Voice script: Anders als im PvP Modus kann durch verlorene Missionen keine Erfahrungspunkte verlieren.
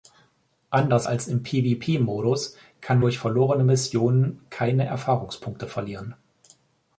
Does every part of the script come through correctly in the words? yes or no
yes